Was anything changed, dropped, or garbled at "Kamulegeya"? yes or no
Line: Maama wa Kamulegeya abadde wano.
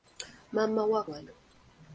yes